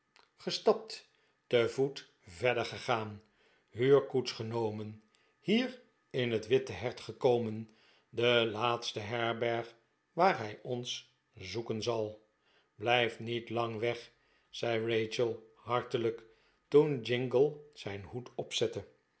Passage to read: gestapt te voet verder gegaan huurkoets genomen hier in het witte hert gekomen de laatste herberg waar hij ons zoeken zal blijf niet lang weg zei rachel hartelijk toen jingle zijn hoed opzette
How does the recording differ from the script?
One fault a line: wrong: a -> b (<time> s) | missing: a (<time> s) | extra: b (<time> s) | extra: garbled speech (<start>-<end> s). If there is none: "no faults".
no faults